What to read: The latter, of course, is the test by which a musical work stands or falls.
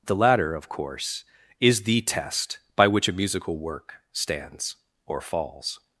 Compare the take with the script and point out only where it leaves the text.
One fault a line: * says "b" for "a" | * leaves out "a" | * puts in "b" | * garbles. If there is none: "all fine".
all fine